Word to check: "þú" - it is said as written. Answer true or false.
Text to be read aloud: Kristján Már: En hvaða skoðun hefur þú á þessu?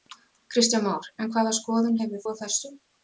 false